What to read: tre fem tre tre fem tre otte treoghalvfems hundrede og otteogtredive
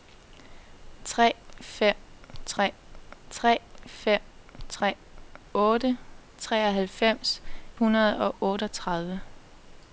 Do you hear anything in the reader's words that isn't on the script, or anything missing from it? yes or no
no